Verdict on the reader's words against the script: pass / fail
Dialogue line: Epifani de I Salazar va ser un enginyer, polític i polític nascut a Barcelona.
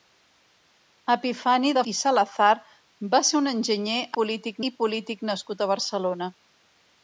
pass